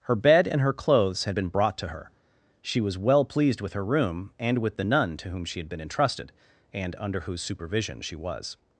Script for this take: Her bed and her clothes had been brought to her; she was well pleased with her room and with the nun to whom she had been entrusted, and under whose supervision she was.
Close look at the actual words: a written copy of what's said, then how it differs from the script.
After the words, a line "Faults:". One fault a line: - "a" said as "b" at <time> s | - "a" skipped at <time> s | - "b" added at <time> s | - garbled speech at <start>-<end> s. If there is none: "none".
Her bed and her clothes had been brought to her; she was well pleased with her room and with the nun to whom she had been entrusted, and under whose supervision she was.
Faults:
none